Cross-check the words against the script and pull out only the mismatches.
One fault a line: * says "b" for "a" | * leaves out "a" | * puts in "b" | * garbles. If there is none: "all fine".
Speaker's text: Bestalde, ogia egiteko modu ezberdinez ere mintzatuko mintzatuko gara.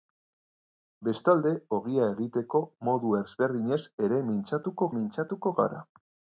all fine